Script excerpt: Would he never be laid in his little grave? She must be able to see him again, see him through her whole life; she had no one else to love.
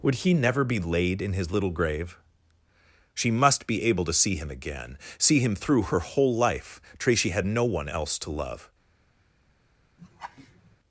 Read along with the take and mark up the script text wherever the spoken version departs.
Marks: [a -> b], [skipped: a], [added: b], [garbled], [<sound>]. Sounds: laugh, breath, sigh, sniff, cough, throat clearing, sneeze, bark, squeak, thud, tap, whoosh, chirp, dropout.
Would he never be laid in his little grave? She must be able to see him again, see him through her whole life; [she -> tracy] had no one else to love. [laugh]